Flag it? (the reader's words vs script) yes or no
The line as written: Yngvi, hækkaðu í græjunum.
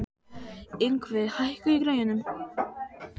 no